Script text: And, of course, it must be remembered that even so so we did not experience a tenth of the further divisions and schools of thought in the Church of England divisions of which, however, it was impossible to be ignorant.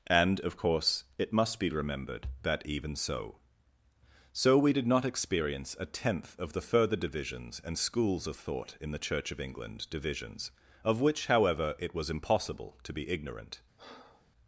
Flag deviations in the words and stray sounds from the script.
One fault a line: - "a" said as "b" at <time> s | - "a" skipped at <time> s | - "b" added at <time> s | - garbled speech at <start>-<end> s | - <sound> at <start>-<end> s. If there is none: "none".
- breath at 13.8-14.3 s